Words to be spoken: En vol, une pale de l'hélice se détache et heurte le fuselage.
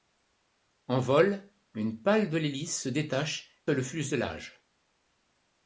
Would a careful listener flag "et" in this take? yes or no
yes